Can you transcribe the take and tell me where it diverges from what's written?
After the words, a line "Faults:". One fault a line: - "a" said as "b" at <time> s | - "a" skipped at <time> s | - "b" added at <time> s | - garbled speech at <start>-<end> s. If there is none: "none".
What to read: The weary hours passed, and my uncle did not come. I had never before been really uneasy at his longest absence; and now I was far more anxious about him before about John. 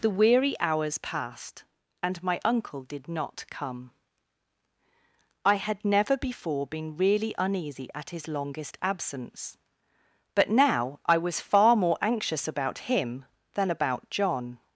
The weary hours passed, and my uncle did not come. I had never before been really uneasy at his longest absence; but now I was far more anxious about him than about John.
Faults:
- "and" said as "but" at 10.3 s
- "before" said as "than" at 13.5 s